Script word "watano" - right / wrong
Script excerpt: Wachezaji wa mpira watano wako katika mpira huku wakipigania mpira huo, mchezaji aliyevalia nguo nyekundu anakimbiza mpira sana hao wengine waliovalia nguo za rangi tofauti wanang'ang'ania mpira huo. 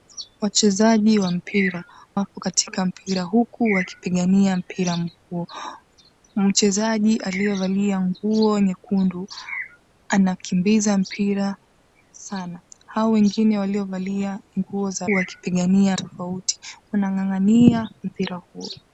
wrong